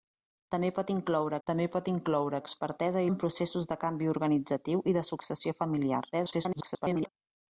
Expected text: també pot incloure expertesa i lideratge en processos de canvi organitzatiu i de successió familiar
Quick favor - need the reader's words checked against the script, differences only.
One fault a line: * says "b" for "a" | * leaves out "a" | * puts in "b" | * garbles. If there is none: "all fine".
* puts in "també pot incloure"
* leaves out "lideratge"
* garbles